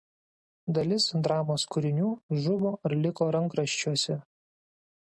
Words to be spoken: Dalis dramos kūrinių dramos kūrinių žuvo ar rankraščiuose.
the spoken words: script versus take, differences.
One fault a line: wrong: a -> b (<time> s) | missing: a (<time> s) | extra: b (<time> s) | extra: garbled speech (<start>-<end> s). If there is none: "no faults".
missing: dramos kūrinių (2.1 s)
extra: liko (3.0 s)